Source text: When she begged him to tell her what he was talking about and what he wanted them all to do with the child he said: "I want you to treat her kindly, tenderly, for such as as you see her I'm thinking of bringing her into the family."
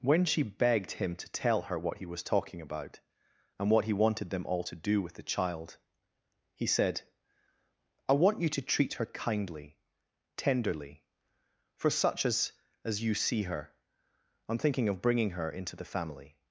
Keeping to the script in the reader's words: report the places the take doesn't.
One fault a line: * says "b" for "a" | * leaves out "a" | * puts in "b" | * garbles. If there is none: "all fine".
all fine